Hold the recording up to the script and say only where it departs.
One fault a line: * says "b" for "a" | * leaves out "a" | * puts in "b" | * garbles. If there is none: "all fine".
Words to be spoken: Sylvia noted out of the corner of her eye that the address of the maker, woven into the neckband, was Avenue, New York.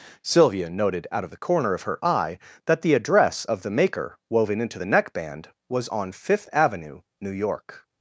* puts in "on Fifth"